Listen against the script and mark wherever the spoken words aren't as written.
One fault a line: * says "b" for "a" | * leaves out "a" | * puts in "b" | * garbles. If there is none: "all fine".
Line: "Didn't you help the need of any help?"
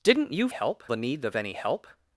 all fine